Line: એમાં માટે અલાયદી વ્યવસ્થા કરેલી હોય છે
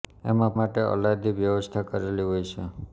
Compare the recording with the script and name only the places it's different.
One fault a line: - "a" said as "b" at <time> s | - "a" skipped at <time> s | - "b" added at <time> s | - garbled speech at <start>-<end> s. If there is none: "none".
none